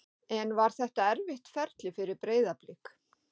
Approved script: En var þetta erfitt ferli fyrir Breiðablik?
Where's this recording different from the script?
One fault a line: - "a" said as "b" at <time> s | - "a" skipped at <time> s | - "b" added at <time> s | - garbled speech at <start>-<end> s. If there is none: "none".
none